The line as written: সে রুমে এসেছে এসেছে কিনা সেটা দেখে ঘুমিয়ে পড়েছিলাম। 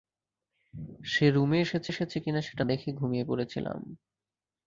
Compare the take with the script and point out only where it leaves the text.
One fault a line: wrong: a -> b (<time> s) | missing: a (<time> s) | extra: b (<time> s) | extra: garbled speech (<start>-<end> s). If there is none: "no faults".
no faults